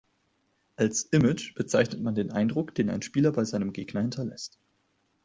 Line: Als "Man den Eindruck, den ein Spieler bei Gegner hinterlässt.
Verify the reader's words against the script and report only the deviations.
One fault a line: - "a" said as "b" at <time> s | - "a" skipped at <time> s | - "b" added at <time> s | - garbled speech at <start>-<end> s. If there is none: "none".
- "Image bezeichnet" added at 1.1 s
- "seinem" added at 3.5 s